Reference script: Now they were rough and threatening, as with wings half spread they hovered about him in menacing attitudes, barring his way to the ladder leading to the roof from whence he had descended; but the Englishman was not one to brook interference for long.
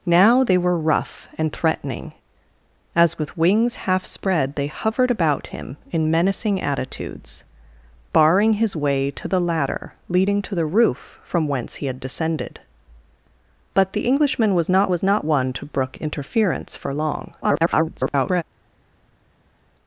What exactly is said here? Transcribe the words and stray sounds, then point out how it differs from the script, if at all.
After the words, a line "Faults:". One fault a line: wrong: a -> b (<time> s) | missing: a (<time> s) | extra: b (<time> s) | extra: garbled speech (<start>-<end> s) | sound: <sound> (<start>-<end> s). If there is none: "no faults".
Now they were rough and threatening, as with wings half spread they hovered about him in menacing attitudes, barring his way to the ladder leading to the roof from whence he had descended; but the Englishman was not was not one to brook interference for long. [garbled]
Faults:
extra: was not (14.9 s)
extra: garbled speech (17.4-18.4 s)